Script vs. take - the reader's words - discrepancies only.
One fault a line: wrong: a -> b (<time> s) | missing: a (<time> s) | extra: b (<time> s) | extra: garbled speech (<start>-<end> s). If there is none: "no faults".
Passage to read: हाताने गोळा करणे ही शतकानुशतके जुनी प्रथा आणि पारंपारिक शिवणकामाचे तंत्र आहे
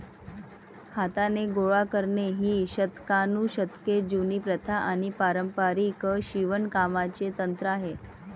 no faults